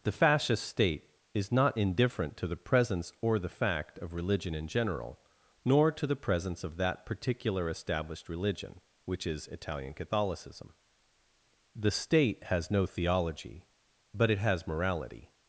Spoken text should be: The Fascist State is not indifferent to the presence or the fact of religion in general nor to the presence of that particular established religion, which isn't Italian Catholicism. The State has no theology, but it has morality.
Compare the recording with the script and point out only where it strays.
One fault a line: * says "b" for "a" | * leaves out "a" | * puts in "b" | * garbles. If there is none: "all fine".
* says "is" for "isn't"